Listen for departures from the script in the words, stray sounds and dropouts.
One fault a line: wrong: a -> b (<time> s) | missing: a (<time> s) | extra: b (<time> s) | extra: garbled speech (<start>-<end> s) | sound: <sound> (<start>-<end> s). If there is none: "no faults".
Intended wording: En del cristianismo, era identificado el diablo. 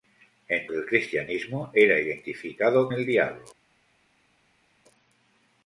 no faults